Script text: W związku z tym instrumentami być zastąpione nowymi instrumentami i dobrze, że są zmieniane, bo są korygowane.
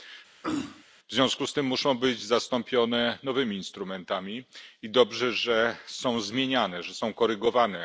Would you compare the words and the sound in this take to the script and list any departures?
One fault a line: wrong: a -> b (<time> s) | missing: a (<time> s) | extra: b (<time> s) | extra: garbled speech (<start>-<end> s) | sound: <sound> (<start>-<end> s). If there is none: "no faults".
sound: throat clearing (0.4-0.8 s)
wrong: instrumentami -> muszą (1.7 s)
wrong: bo -> że (6.8 s)